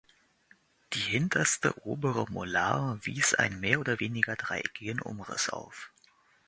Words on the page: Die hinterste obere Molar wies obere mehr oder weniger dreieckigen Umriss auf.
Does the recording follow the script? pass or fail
fail